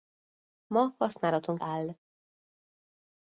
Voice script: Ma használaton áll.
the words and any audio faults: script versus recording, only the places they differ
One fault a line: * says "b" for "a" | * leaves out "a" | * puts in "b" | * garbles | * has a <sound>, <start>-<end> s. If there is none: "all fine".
all fine